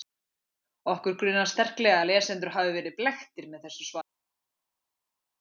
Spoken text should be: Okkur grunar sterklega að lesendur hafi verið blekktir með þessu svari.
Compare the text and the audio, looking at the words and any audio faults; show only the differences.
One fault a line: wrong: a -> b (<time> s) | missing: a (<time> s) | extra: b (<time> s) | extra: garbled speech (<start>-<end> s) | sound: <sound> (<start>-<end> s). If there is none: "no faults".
no faults